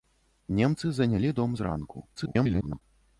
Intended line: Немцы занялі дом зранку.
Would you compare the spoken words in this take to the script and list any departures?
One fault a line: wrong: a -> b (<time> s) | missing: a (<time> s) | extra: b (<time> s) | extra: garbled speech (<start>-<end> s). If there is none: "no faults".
extra: garbled speech (2.1-2.8 s)